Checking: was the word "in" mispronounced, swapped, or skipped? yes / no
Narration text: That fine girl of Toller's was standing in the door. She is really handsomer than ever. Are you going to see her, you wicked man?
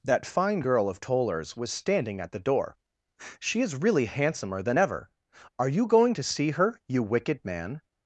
yes